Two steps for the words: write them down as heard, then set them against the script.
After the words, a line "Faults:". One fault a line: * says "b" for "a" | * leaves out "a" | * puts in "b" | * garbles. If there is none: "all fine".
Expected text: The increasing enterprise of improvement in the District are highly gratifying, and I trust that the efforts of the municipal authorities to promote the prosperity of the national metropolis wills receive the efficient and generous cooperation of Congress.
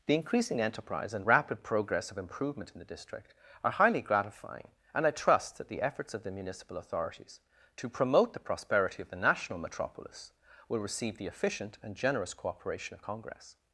The increasing enterprise and rapid progress of improvement in the District are highly gratifying, and I trust that the efforts of the municipal authorities to promote the prosperity of the national metropolis will receive the efficient and generous cooperation of Congress.
Faults:
* puts in "and rapid progress"
* says "will" for "wills"